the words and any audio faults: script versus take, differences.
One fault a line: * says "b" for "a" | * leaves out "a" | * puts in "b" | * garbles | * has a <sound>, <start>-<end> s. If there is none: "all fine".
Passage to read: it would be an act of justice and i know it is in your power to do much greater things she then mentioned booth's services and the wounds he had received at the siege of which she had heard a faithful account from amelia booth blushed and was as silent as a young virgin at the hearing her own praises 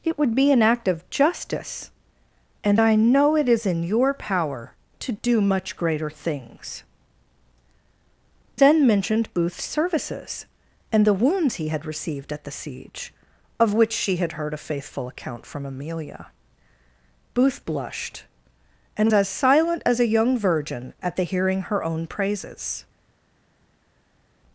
* leaves out "she"
* leaves out "was"